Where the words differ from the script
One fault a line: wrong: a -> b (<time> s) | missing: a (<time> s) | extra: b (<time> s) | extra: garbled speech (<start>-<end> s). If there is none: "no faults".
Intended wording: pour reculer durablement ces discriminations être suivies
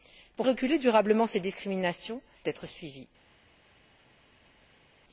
no faults